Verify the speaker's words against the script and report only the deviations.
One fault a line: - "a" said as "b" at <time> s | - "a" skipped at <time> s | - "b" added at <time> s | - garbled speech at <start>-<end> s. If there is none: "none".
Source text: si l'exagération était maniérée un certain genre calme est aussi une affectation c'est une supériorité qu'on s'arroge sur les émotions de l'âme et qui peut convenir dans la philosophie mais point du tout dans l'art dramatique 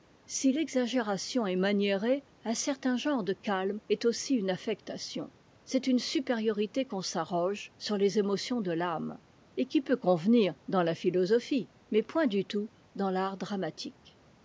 - "était" said as "est" at 1.4 s
- "de" added at 3.2 s